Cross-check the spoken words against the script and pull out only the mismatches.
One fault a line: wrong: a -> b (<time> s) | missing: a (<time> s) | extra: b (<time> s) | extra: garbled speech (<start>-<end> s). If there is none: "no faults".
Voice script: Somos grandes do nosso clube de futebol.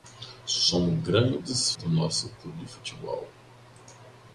no faults